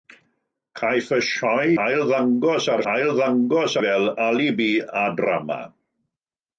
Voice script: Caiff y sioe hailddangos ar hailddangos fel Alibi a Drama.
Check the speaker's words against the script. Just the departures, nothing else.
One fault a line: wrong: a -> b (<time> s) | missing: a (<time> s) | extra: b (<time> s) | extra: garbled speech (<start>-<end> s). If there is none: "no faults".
no faults